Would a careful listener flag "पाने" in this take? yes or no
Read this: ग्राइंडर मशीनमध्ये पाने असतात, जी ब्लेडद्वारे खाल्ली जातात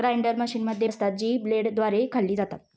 yes